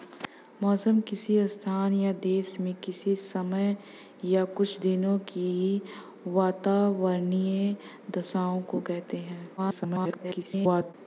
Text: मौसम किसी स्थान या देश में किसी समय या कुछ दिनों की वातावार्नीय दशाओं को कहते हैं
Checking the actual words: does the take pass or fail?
fail